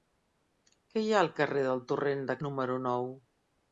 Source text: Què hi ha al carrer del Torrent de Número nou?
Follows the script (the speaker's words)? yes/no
yes